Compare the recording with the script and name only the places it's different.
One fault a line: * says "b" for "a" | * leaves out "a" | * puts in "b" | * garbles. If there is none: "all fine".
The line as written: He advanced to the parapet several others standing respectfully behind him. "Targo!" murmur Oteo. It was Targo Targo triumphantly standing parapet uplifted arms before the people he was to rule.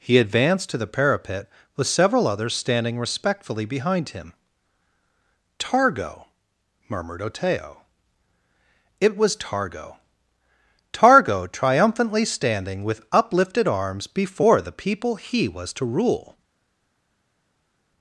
* puts in "with"
* says "murmured" for "murmur"
* says "with" for "parapet"